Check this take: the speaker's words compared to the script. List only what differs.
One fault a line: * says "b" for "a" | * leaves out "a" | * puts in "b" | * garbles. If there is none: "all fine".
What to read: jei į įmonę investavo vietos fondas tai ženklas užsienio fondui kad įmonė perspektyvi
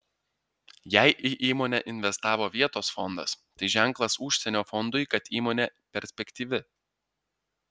all fine